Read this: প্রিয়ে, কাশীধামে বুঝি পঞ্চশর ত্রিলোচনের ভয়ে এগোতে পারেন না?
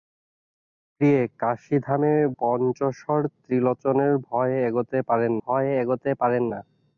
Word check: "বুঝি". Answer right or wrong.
wrong